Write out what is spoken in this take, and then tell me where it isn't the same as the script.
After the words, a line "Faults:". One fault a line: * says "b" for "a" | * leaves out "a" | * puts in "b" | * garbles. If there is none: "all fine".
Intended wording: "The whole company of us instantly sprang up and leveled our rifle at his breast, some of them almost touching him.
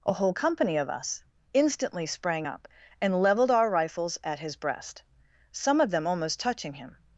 "A whole company of us instantly sprang up and leveled our rifles at his breast, some of them almost touching him.
Faults:
* says "A" for "The"
* says "rifles" for "rifle"